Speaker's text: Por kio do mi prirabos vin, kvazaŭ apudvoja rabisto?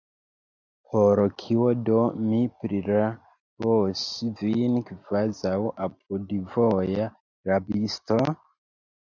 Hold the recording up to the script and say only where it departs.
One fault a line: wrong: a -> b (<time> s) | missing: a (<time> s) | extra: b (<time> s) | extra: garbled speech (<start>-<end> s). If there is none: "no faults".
no faults